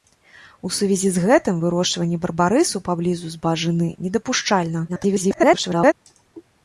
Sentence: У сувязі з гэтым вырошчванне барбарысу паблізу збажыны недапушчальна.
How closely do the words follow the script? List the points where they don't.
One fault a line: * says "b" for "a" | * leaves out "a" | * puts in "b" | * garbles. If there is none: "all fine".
* garbles